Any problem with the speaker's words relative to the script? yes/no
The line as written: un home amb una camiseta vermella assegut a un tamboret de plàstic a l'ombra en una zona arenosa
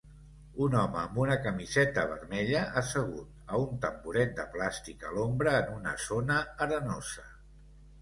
no